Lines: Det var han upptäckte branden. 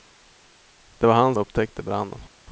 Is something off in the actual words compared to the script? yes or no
no